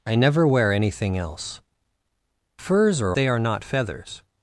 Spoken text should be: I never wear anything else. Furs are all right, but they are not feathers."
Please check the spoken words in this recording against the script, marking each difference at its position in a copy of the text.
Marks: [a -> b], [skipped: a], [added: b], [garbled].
I never wear anything else. Furs are [skipped: all right, but] they are not feathers."